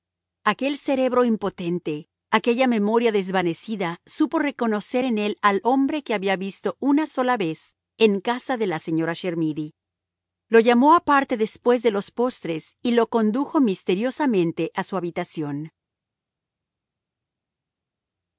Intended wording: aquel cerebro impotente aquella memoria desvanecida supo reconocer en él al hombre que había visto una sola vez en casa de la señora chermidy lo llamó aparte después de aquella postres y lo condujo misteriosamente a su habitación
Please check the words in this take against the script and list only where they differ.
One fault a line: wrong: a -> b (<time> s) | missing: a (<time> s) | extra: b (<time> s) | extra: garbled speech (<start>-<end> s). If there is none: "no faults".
wrong: aquella -> los (11.9 s)